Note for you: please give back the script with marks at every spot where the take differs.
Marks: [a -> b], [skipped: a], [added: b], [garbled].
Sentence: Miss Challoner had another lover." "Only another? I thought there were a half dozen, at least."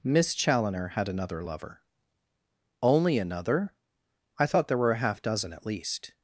Miss Challoner had another lover." "Only another? I thought there were a half dozen, at least."